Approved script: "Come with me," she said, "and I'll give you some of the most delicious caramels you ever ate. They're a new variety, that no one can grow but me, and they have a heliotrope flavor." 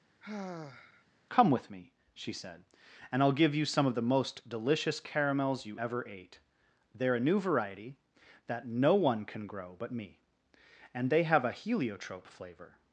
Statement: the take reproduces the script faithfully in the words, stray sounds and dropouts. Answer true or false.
false